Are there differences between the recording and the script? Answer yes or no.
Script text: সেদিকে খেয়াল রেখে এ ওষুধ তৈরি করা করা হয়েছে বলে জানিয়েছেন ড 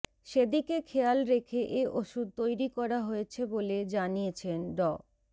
yes